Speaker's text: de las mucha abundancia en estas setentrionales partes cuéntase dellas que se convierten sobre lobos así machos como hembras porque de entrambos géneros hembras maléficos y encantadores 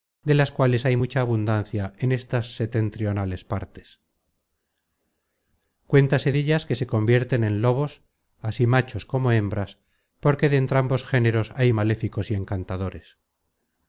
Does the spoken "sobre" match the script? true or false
false